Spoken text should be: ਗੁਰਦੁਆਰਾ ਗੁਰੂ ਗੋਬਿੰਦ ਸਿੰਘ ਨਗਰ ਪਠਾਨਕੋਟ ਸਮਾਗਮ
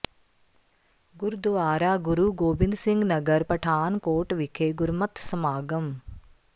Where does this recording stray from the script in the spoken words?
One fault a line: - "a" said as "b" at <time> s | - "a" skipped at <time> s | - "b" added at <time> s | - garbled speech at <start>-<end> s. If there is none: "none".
- "ਵਿਖੇ ਗੁਰਮਤਿ" added at 4.3 s